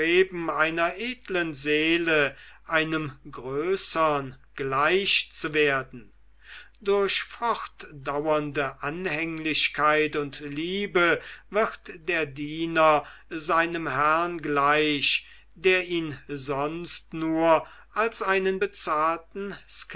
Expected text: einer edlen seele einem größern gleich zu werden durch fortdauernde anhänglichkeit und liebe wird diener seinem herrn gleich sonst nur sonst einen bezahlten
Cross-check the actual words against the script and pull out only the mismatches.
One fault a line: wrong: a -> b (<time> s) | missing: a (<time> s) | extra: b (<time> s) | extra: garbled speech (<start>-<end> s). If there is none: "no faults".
extra: der (12.1 s)
extra: der ihn (15.5 s)
wrong: sonst -> als (17.9 s)